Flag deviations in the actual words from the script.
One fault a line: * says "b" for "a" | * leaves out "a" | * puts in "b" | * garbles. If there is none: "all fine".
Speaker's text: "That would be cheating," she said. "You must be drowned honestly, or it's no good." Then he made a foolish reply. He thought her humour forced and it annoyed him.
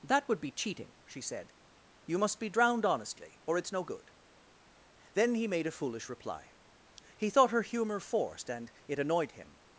all fine